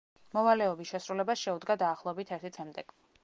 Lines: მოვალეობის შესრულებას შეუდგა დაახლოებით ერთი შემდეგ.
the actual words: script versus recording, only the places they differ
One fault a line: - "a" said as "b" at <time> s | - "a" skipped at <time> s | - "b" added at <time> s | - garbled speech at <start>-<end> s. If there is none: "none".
none